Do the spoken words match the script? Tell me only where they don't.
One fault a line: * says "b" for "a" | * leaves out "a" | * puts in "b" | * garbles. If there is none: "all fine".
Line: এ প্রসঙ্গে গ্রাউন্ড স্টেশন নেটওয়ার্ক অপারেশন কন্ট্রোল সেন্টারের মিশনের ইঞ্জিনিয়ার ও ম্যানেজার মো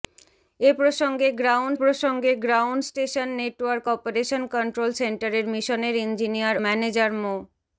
* puts in "প্রসঙ্গে গ্রাউন্ড"
* leaves out "ও"